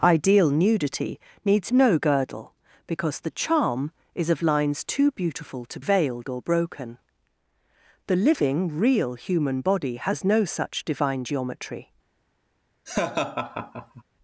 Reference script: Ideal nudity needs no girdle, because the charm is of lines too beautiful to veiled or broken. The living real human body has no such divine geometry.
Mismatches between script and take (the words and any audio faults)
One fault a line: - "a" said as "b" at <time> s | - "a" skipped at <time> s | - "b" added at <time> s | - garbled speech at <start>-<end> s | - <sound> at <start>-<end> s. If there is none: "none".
- laugh at 12.9-14.0 s